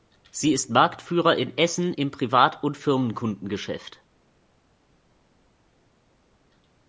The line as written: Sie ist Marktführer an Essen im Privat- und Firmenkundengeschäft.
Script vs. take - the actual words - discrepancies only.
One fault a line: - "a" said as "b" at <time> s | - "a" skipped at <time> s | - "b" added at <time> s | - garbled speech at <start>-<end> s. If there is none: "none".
- "an" said as "in" at 1.4 s